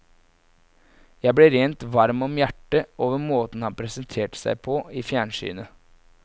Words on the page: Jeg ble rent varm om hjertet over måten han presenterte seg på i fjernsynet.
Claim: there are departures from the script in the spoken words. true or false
false